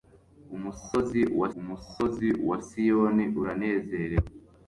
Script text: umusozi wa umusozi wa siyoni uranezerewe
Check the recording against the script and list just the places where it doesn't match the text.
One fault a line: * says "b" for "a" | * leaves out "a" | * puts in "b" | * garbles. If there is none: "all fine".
all fine